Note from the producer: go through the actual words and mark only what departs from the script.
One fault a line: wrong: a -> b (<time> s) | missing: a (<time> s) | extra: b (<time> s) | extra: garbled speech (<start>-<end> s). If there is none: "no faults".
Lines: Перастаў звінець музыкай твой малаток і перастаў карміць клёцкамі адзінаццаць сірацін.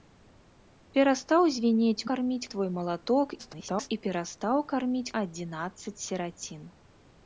wrong: музыкай -> карміць (2.1 s)
extra: garbled speech (3.4-3.9 s)
missing: клёцкамі (5.1 s)